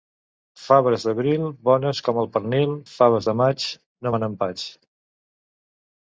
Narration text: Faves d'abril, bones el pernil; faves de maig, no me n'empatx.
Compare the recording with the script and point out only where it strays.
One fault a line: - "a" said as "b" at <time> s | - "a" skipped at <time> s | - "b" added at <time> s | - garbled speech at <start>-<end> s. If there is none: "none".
- "com" added at 2.1 s